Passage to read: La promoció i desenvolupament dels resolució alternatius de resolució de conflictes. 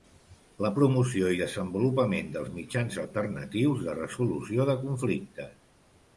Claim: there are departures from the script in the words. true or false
true